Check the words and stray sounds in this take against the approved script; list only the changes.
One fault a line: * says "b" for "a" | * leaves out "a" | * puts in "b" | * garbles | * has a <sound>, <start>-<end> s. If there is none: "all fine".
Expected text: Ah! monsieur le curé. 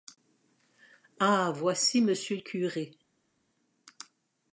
* puts in "voici"